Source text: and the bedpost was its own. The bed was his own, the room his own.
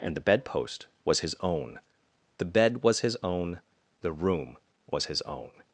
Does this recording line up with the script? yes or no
no